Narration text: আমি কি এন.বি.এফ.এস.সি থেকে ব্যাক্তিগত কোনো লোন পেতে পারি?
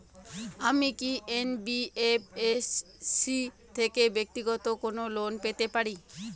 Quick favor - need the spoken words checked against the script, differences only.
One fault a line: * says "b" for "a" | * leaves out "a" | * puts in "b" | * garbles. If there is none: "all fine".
all fine